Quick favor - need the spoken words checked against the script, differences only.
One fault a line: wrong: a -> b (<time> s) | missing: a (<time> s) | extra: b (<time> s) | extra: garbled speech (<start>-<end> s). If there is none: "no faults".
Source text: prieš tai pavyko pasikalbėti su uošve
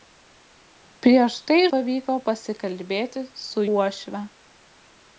no faults